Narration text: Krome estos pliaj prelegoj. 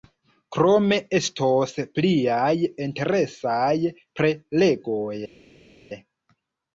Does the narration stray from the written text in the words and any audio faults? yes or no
yes